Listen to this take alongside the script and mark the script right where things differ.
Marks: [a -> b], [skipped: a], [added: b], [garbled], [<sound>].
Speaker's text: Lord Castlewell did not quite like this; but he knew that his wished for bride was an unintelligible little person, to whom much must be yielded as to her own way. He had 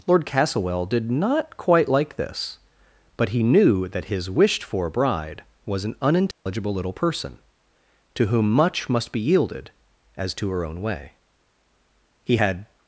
Lord Castlewell did not quite like this; but he knew that his wished for bride was an unintelligible [dropout] little person, to whom much must be yielded as to her own way. He had